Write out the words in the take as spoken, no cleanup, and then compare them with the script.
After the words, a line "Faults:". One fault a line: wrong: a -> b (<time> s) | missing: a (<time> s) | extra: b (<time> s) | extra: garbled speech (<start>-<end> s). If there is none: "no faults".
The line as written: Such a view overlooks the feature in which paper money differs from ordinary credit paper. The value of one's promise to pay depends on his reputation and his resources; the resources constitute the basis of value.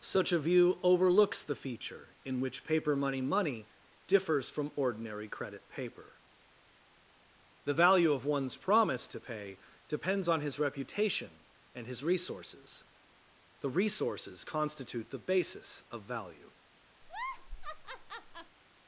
Such a view overlooks the feature in which paper money money differs from ordinary credit paper. The value of one's promise to pay depends on his reputation and his resources; the resources constitute the basis of value.
Faults:
extra: money (3.2 s)